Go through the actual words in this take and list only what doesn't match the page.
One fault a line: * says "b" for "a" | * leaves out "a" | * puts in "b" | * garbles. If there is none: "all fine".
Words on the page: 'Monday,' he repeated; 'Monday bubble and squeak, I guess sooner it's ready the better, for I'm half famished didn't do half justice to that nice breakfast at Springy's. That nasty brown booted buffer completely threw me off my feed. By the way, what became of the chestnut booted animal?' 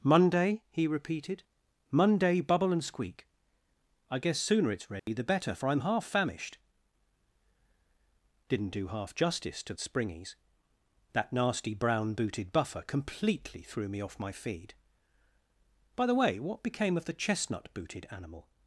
* leaves out "that nice breakfast"